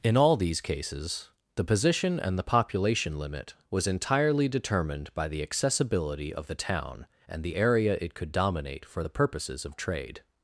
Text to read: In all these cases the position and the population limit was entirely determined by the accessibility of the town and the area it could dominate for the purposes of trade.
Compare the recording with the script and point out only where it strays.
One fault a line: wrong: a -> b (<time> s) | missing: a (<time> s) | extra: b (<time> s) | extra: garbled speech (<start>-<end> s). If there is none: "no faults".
no faults